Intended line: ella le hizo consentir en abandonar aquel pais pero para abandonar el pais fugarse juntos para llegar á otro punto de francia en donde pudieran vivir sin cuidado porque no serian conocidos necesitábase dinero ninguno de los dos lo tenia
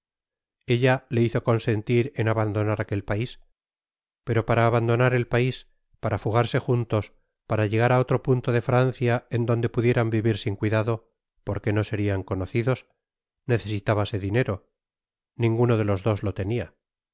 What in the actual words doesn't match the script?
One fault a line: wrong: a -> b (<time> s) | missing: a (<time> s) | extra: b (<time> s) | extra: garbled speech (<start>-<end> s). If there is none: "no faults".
extra: para (6.0 s)